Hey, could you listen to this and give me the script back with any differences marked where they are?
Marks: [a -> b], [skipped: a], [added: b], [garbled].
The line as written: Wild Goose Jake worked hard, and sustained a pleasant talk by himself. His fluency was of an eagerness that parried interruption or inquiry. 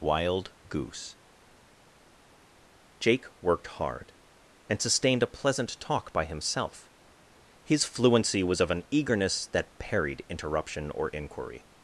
Wild Goose Jake worked hard, and sustained a pleasant talk by himself. His fluency was of an eagerness that parried interruption or inquiry.